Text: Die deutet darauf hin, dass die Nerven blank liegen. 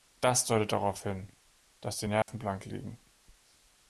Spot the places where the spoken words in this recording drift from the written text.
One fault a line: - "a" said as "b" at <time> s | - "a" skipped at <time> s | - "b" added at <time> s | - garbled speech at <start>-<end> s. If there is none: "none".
- "Die" said as "Das" at 0.2 s